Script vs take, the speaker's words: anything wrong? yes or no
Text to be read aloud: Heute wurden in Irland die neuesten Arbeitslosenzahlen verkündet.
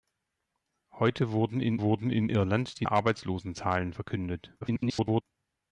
yes